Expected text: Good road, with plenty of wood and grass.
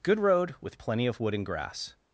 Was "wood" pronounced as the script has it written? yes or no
yes